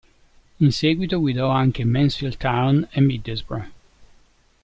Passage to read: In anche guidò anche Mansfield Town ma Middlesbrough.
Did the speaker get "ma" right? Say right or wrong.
wrong